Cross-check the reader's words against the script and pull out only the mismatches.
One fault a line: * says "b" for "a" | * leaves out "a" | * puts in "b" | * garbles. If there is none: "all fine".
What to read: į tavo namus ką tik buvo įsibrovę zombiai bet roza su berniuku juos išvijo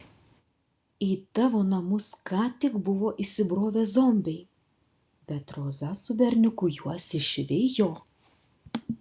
all fine